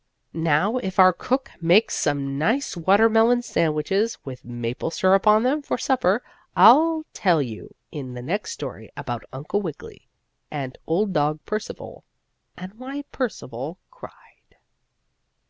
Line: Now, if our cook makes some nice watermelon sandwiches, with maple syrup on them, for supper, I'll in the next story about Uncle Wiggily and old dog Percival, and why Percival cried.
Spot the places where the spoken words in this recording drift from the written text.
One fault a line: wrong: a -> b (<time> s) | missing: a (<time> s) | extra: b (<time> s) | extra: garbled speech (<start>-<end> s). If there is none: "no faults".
extra: tell you (7.1 s)